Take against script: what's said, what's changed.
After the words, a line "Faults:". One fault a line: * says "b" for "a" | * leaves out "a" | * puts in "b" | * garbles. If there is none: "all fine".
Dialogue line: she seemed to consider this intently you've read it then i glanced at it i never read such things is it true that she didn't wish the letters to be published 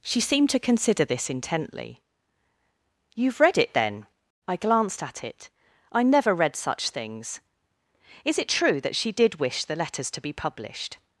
she seemed to consider this intently you've read it then i glanced at it i never read such things is it true that she did wish the letters to be published
Faults:
* says "did" for "didn't"